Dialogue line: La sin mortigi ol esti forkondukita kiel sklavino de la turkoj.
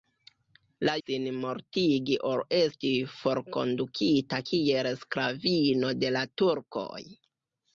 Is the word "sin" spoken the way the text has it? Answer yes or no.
yes